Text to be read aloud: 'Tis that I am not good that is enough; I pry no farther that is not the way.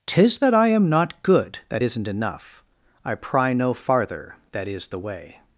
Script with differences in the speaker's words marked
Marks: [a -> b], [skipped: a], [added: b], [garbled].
'Tis that I am not good that [is -> isn't] enough; I pry no farther that is [skipped: not] the way.